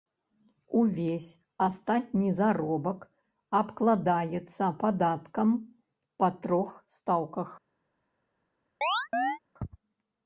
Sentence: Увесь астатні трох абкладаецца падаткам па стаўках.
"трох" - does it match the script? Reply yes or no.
no